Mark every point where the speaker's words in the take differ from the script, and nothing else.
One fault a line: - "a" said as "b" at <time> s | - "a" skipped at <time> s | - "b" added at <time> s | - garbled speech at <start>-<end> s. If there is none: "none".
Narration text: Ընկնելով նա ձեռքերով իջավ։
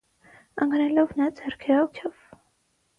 none